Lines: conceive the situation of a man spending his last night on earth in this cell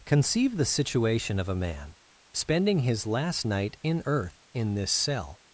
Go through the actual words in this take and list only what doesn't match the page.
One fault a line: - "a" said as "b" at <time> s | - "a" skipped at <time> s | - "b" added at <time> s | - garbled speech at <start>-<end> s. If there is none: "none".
- "on" said as "in" at 3.8 s